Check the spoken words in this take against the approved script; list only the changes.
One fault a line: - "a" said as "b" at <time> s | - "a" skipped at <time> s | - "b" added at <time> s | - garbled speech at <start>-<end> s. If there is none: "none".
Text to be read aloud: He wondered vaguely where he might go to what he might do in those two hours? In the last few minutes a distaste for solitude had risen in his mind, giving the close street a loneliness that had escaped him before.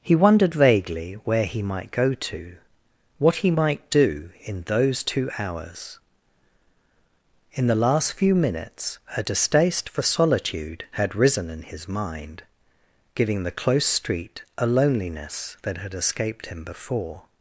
none